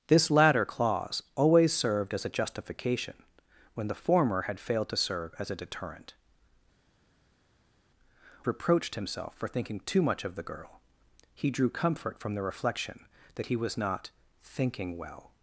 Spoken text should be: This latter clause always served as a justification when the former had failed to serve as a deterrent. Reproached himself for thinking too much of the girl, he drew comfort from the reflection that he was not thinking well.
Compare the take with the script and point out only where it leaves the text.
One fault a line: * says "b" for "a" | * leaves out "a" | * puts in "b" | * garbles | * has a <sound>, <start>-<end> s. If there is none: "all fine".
all fine